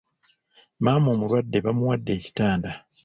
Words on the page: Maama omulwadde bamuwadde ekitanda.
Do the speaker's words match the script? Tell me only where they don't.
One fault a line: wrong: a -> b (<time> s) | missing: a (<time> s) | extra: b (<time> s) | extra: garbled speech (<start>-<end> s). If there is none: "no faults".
no faults